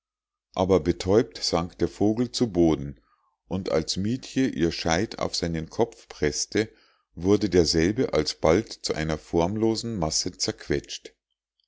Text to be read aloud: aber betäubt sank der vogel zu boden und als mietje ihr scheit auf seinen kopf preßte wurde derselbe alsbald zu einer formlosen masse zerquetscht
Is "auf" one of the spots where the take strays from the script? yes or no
no